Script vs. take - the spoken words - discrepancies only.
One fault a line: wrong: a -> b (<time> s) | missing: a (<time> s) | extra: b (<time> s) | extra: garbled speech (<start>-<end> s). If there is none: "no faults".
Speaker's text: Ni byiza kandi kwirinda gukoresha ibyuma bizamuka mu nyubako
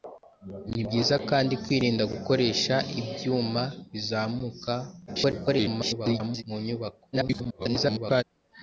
extra: garbled speech (5.1-6.4 s)
extra: garbled speech (7.1-8.2 s)